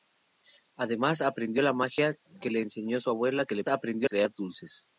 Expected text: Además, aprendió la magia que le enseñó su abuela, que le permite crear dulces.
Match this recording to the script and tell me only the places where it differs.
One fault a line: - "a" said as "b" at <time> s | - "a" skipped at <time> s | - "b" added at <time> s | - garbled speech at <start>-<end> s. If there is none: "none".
- "permite" said as "aprendió" at 3.7 s